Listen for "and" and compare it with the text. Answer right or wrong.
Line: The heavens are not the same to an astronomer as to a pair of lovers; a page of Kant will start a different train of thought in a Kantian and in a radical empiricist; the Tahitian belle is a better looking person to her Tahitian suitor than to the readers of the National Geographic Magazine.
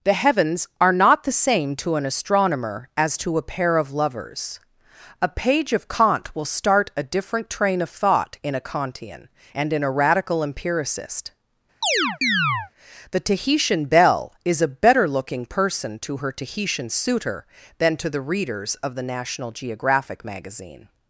right